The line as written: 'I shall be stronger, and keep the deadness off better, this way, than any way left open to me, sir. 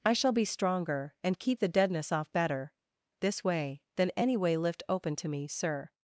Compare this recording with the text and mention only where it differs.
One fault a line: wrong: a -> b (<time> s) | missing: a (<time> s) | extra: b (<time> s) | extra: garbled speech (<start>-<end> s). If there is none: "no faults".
wrong: left -> lift (4.6 s)